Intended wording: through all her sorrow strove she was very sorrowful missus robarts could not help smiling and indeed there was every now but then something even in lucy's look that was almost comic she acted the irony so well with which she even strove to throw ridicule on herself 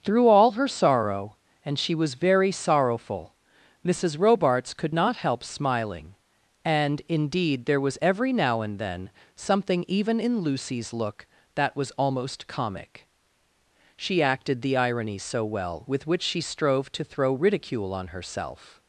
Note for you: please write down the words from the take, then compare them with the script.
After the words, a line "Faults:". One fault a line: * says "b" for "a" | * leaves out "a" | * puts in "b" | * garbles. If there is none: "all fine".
through all her sorrow and she was very sorrowful missus robarts could not help smiling and indeed there was every now and then something even in lucy's look that was almost comic she acted the irony so well with which she strove to throw ridicule on herself
Faults:
* says "and" for "strove"
* says "and" for "but"
* leaves out "even"